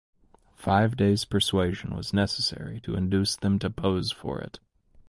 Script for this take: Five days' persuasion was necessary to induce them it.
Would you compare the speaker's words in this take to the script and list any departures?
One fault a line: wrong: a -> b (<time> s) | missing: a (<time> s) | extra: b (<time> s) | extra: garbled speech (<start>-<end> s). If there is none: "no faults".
extra: to pose for (3.6 s)